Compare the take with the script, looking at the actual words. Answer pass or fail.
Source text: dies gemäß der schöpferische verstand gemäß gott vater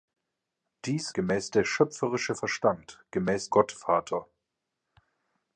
pass